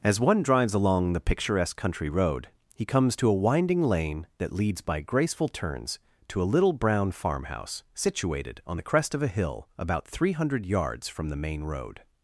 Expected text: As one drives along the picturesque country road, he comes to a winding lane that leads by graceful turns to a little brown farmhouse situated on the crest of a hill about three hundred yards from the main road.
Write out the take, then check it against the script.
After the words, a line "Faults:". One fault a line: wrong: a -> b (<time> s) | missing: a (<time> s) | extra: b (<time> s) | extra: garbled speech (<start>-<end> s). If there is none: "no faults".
As one drives along the picturesque country road, he comes to a winding lane that leads by graceful turns to a little brown farmhouse situated on the crest of a hill about three hundred yards from the main road.
Faults:
no faults